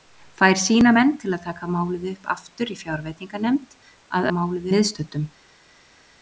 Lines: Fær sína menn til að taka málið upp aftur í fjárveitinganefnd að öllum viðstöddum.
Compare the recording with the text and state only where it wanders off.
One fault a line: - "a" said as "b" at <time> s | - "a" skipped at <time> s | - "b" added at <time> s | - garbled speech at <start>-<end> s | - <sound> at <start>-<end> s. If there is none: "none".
- "öllum" said as "málið" at 4.3 s